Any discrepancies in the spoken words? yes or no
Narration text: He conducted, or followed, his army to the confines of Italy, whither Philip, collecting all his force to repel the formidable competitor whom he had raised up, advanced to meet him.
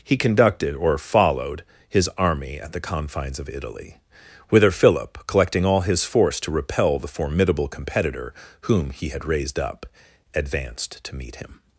yes